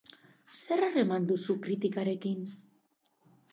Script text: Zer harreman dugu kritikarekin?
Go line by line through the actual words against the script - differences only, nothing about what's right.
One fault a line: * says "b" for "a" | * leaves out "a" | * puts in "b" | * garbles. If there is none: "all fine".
* says "duzu" for "dugu"